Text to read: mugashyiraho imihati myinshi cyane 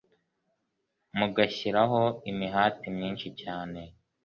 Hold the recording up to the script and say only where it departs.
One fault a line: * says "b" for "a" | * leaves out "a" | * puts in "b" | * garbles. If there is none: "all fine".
all fine